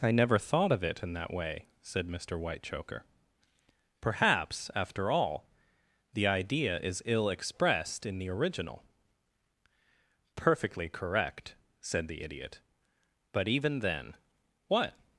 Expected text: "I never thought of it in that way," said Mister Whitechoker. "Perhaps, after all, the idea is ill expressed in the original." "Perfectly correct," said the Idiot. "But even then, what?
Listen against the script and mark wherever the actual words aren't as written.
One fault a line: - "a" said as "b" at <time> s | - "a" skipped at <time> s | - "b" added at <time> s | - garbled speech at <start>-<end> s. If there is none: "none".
none